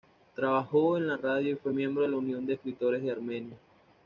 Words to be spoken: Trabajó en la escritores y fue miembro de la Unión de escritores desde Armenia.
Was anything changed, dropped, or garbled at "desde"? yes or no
yes